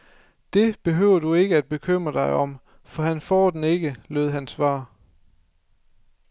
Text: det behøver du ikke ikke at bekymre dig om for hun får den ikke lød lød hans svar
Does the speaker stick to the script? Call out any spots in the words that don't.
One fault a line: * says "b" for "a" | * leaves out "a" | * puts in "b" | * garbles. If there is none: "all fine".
* leaves out "ikke"
* says "han" for "hun"
* leaves out "lød"